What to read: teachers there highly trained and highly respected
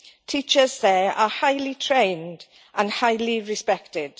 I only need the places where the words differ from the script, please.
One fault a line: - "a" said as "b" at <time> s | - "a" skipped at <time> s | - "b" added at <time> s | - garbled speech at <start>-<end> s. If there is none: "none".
- "are" added at 1.1 s